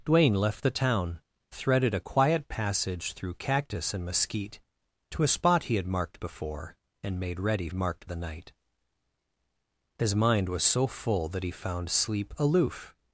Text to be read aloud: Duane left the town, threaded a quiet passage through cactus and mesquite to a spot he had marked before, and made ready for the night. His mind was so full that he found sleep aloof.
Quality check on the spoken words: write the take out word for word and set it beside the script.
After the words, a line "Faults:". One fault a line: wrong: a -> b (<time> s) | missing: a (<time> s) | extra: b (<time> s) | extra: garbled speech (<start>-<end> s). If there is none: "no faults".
Duane left the town, threaded a quiet passage through cactus and mesquite to a spot he had marked before, and made ready marked the night. His mind was so full that he found sleep aloof.
Faults:
wrong: for -> marked (7.7 s)